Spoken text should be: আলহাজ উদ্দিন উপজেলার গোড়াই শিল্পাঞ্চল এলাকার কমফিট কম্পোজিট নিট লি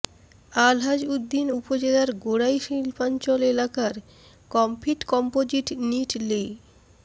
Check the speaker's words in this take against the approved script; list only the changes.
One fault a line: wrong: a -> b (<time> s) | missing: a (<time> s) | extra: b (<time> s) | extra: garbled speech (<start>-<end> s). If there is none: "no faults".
no faults